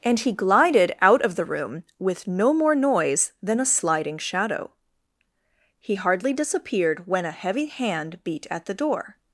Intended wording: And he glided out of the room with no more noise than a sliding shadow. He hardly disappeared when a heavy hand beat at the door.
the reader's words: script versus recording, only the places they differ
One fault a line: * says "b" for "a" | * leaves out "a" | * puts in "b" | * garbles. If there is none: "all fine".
all fine